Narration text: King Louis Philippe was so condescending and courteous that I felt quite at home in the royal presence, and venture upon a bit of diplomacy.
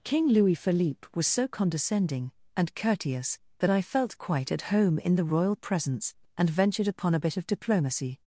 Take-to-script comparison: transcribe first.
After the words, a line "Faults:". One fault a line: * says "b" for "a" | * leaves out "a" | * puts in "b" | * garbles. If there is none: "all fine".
King Louis Philippe was so condescending and courteous that I felt quite at home in the royal presence, and ventured upon a bit of diplomacy.
Faults:
* says "ventured" for "venture"